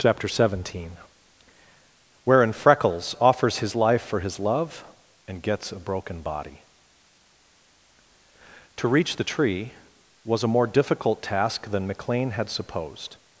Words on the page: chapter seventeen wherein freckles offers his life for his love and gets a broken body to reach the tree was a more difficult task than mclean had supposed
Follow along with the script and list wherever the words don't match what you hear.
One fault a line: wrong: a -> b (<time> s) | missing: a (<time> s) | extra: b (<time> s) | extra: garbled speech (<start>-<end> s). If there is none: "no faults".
no faults